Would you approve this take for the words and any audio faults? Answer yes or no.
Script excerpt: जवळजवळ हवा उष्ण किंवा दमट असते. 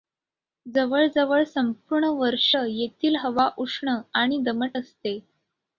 no